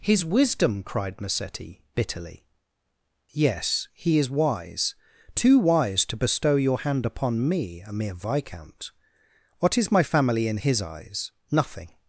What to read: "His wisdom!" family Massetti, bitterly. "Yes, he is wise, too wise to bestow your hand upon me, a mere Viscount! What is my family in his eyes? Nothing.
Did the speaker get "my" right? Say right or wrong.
right